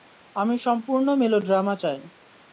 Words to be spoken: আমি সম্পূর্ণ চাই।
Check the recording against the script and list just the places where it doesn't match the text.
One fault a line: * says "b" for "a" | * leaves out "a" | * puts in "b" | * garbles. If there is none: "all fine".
* puts in "মেলোড্রামা"